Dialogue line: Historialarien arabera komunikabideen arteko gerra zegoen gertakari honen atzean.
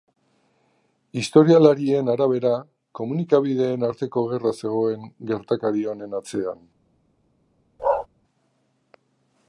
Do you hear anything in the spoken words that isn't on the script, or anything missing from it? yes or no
no